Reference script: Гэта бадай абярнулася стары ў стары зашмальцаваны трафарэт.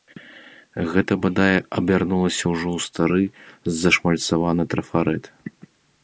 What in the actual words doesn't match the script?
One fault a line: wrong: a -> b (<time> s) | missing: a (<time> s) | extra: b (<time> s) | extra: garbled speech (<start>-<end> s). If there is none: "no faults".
wrong: стары -> ўжо (2.5 s)